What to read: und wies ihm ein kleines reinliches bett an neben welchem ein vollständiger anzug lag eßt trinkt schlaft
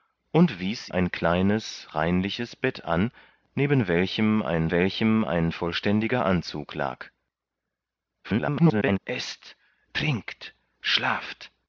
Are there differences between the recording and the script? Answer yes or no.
yes